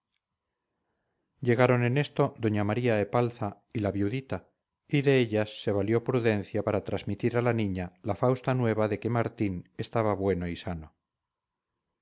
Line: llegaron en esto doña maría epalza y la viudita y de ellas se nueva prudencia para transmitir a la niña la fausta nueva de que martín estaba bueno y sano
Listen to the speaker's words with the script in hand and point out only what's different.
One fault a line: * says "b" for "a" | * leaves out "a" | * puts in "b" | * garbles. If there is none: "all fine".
* says "valió" for "nueva"